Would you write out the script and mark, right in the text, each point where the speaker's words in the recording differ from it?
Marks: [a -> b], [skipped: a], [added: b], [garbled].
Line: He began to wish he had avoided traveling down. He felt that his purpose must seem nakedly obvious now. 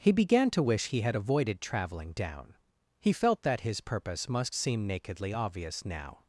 He began to wish he had avoided traveling down. He felt that his purpose must seem nakedly obvious now.